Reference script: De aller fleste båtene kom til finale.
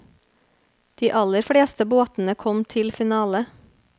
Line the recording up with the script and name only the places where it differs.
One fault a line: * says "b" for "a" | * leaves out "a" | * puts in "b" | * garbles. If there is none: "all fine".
all fine